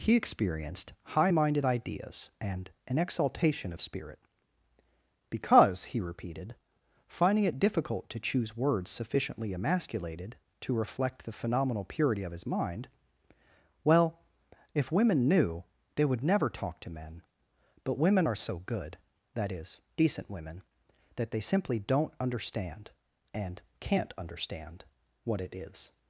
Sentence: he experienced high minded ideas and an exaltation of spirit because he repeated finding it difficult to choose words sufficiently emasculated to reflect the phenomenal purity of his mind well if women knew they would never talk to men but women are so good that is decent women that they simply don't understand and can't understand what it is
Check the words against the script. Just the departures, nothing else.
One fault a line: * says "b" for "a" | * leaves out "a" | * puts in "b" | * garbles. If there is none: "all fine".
all fine